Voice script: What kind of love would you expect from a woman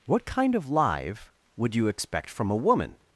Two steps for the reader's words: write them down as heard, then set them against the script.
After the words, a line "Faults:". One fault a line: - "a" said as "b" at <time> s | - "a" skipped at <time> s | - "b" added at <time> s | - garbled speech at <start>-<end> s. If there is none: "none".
What kind of live would you expect from a woman
Faults:
- "love" said as "live" at 0.7 s